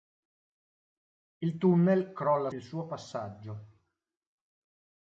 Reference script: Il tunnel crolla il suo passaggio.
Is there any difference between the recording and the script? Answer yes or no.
no